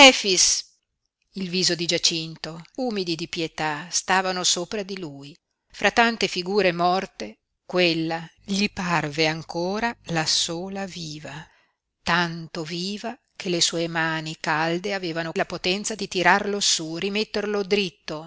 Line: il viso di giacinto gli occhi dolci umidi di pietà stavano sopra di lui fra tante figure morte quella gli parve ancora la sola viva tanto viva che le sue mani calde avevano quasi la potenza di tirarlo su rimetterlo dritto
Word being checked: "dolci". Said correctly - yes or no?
no